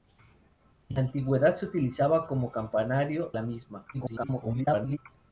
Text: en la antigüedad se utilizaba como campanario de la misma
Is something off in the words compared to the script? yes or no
yes